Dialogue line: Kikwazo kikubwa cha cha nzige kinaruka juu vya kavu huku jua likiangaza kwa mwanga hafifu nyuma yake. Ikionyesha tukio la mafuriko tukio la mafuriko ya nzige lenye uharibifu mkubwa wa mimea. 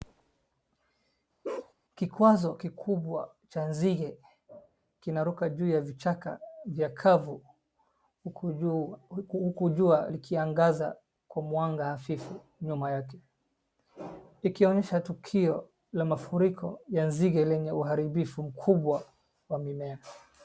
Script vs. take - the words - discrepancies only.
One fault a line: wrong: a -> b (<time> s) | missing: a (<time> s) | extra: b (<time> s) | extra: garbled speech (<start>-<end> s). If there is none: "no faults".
missing: cha (3.6 s)
extra: ya vichaka (5.7 s)
missing: tukio la mafuriko (16.8 s)